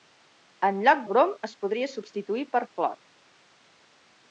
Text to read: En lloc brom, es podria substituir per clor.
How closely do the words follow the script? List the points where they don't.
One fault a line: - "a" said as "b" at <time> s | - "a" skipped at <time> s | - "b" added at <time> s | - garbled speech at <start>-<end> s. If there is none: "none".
none